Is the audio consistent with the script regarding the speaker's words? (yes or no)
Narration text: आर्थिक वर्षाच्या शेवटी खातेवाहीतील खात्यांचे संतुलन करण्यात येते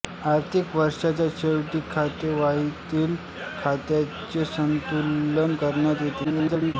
no